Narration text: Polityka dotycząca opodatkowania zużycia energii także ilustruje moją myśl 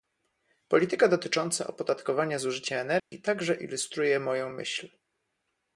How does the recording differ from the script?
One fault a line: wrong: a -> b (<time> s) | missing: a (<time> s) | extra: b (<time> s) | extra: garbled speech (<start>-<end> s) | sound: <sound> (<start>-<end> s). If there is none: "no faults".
sound: dropout (3.0-3.1 s)